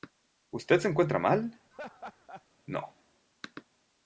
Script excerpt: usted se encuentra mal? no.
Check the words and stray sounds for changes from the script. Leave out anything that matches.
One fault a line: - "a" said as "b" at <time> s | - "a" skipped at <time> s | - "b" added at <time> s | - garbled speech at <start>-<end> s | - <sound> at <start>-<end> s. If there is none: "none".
- laugh at 1.7-2.4 s